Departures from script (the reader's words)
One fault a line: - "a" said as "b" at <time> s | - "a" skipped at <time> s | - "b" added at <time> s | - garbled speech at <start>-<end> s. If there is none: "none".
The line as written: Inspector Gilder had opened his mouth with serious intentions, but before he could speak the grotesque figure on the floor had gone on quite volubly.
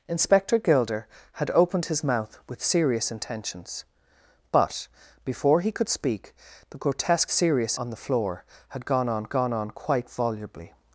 - "figure" said as "serious" at 7.3 s
- "gone on" added at 9.3 s